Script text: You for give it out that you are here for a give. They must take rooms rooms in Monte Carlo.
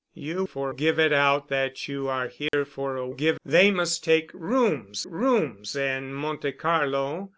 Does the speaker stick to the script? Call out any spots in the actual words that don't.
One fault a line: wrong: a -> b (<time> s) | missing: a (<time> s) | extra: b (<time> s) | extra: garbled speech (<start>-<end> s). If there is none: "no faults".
no faults